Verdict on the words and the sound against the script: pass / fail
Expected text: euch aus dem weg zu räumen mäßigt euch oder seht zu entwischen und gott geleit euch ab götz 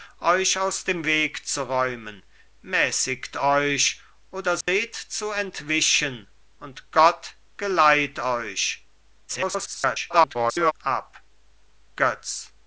fail